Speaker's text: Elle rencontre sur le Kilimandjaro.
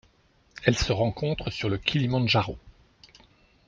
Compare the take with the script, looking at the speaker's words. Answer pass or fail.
fail